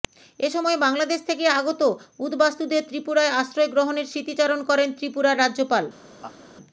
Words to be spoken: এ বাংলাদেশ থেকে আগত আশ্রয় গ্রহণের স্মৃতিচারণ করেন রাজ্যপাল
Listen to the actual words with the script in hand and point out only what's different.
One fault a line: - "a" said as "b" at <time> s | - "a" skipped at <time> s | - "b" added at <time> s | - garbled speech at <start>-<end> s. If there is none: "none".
- "সময়" added at 0.5 s
- "উদ্বাস্তুদের ত্রিপুরায়" added at 2.2 s
- "ত্রিপুরার" added at 5.0 s